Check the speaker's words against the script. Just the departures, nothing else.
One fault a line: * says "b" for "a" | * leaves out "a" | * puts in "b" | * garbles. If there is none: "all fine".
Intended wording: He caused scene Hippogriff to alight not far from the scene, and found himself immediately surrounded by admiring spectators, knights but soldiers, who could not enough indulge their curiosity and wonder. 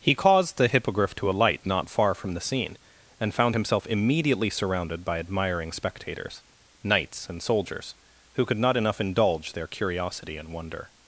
* says "the" for "scene"
* says "and" for "but"